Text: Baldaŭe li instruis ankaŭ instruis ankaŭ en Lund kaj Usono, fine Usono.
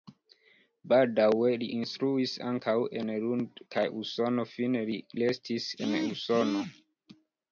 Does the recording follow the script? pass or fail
fail